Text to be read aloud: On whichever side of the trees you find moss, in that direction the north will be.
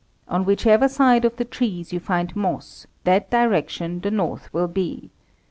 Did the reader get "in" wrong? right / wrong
wrong